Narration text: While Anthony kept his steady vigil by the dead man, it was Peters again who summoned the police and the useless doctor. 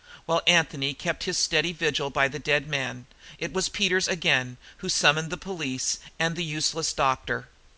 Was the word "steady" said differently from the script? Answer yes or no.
no